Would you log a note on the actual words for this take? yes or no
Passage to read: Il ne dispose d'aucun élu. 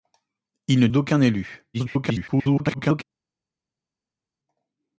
yes